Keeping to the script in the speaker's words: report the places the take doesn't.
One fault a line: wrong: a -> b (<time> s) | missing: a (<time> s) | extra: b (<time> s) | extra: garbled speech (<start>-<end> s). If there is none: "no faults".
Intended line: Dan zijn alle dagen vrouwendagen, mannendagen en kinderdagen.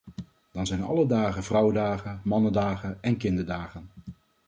no faults